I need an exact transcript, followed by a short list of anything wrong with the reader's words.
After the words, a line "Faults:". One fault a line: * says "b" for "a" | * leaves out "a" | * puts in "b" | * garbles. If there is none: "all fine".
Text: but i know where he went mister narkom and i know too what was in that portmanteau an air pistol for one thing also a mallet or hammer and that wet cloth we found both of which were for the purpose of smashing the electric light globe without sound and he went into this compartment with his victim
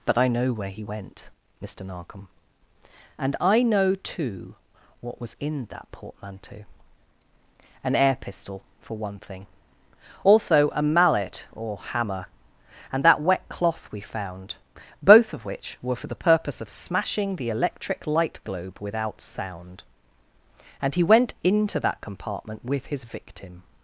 but i know where he went mister narkom and i know too what was in that portmanteau an air pistol for one thing also a mallet or hammer and that wet cloth we found both of which were for the purpose of smashing the electric light globe without sound and he went into that compartment with his victim
Faults:
* says "that" for "this"